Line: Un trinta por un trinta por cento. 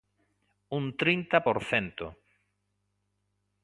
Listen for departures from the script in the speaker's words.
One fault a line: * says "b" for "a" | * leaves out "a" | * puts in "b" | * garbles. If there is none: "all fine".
* leaves out "un trinta por"